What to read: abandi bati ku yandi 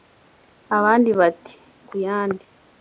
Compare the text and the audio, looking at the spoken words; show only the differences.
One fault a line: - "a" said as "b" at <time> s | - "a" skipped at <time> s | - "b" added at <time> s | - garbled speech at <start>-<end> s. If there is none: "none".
none